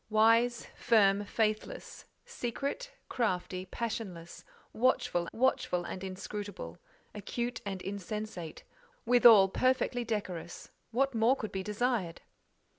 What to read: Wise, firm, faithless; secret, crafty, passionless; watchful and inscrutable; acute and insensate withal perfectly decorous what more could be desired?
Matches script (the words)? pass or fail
fail